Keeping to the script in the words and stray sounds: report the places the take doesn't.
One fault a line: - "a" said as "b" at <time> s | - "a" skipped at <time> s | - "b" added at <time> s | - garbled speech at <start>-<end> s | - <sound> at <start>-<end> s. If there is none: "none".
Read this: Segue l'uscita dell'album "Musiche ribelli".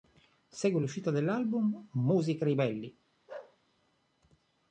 - bark at 3.3-3.6 s